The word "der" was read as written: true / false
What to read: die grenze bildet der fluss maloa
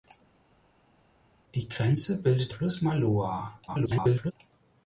false